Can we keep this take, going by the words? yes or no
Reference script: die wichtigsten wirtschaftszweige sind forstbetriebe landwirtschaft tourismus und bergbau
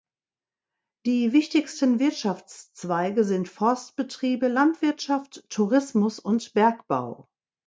yes